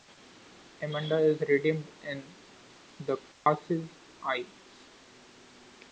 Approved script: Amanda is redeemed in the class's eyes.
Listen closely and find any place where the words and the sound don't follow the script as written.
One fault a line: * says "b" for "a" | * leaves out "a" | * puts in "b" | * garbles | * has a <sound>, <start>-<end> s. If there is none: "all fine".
* has a dropout, 3.3-3.5 s